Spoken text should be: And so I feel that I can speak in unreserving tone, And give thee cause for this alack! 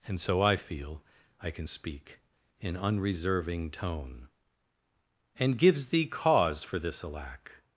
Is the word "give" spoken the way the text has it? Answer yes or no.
no